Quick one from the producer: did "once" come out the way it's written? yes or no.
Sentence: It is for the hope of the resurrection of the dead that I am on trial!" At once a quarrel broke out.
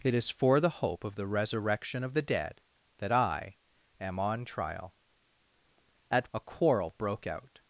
no